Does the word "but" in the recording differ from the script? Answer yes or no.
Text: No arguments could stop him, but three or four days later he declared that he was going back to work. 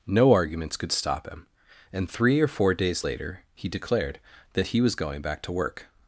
yes